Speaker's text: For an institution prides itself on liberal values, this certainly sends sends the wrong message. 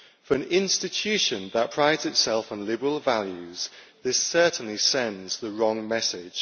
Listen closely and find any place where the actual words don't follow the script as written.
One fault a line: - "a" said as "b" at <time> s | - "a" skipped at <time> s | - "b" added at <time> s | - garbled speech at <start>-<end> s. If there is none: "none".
- "that" added at 1.5 s
- "sends" skipped at 5.4 s